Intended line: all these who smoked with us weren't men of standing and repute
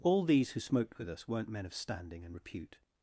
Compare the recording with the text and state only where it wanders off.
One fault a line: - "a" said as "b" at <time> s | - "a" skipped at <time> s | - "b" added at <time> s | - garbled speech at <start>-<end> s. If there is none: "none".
none